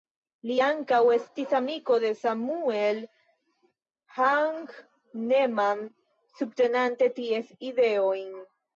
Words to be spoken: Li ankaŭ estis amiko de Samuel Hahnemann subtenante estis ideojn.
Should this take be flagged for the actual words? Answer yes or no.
yes